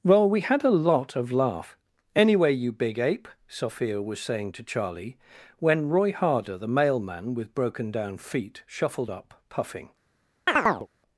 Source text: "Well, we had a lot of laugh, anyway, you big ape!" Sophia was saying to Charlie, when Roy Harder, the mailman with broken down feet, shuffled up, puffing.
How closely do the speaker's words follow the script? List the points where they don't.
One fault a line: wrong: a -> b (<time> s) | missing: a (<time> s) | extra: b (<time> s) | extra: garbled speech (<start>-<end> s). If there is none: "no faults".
no faults